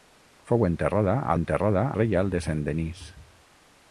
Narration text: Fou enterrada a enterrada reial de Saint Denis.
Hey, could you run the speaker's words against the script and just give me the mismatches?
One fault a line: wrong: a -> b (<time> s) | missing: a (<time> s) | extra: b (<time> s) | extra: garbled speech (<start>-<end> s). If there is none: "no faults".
no faults